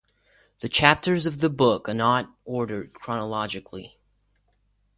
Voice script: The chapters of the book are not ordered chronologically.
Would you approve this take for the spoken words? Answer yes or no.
yes